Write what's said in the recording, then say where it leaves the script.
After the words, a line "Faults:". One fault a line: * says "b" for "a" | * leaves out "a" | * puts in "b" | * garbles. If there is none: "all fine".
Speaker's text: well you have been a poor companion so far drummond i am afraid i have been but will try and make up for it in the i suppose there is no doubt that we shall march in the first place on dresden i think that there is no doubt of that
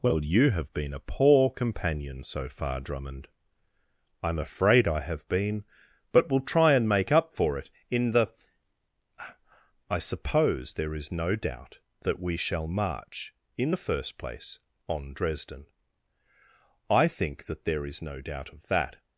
well you have been a poor companion so far drummond i am afraid i have been but will try and make up for it in the i suppose there is no doubt that we shall march in the first place on dresden i think that there is no doubt of that
Faults:
all fine